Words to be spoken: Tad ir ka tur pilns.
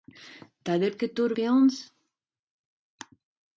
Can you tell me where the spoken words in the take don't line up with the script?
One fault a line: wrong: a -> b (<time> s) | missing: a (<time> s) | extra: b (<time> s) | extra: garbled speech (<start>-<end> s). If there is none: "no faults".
no faults